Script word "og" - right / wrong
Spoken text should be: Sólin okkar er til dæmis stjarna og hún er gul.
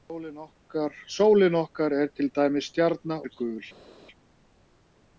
wrong